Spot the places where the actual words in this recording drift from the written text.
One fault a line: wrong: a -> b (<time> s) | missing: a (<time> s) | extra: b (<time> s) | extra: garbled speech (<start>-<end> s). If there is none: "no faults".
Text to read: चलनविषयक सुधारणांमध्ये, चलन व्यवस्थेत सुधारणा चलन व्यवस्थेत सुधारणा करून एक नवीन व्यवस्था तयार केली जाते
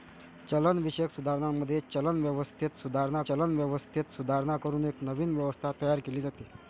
no faults